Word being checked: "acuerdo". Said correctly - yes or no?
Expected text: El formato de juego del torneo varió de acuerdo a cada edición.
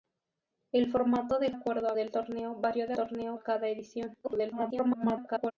no